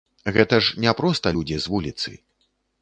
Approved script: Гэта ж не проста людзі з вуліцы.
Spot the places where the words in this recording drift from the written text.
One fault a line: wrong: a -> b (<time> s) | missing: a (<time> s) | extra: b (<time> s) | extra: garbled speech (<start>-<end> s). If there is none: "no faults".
no faults